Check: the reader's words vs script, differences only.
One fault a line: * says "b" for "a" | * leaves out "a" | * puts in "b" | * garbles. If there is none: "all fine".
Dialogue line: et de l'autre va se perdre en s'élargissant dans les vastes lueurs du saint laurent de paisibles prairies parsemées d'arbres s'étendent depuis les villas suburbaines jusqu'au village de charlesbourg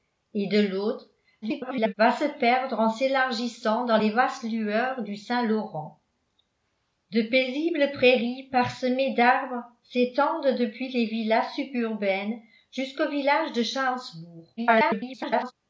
* garbles
* garbles